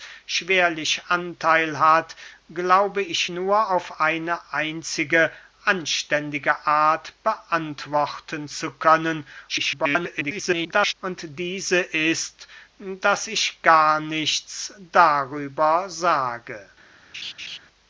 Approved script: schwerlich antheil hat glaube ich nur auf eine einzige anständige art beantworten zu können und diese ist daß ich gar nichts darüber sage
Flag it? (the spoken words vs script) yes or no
yes